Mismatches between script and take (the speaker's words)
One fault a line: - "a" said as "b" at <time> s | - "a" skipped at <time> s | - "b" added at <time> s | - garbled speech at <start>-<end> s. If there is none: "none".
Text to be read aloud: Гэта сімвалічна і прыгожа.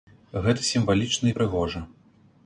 none